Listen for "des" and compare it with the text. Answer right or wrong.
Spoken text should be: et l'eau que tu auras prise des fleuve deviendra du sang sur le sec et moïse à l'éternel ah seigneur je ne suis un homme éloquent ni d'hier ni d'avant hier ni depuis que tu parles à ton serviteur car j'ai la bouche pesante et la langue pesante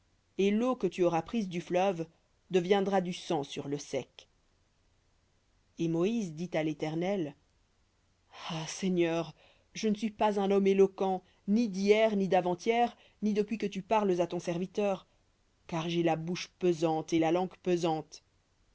wrong